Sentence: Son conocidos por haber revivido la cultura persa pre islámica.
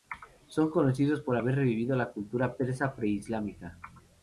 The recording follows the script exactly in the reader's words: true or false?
true